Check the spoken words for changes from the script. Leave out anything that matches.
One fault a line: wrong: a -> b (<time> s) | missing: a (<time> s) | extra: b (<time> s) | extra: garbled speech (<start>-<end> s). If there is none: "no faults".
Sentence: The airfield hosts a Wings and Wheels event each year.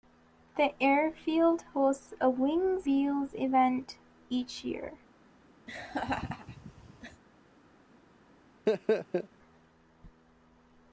missing: and (2.9 s)